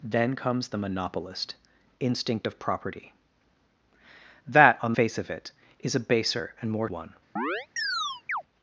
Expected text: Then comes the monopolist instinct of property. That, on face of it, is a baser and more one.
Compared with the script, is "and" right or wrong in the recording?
right